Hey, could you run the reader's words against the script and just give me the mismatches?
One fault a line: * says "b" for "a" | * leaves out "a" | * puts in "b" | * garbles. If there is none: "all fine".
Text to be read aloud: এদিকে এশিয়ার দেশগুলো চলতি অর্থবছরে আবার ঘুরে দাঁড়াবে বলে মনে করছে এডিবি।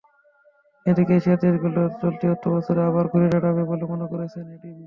all fine